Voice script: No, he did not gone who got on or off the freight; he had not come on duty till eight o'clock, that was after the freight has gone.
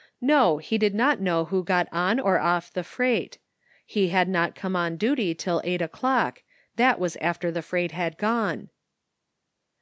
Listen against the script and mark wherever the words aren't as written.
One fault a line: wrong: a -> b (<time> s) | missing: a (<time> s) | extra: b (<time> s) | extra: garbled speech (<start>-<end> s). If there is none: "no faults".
wrong: gone -> know (1.2 s)
wrong: has -> had (7.9 s)